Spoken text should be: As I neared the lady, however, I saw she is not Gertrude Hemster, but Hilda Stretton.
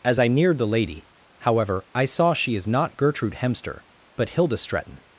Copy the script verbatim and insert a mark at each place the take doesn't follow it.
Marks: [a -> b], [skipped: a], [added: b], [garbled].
As I neared the lady, however, I saw she is not Gertrude Hemster, but Hilda Stretton.